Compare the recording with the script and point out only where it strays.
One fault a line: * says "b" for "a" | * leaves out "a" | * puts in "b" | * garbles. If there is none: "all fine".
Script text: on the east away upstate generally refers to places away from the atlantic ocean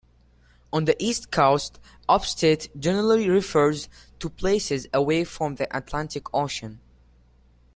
* says "coast" for "away"